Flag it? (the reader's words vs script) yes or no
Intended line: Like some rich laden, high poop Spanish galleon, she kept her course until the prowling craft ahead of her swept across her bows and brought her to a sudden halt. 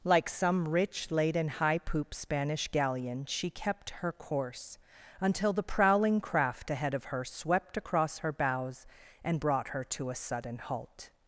no